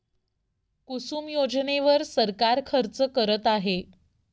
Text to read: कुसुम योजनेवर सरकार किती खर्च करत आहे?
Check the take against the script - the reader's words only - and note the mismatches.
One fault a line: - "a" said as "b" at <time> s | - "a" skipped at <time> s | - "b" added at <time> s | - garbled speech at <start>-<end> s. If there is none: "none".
- "किती" skipped at 2.6 s